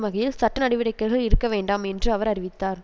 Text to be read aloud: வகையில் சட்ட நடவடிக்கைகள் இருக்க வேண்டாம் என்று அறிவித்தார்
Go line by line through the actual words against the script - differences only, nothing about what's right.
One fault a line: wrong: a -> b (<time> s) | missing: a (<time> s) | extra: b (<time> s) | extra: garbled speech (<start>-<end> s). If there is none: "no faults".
extra: அவர் (2.1 s)